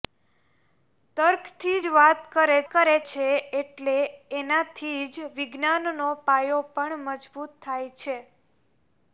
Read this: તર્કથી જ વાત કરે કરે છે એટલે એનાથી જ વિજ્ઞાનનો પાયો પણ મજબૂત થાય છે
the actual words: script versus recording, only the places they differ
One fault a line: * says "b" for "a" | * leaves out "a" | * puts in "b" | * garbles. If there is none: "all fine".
all fine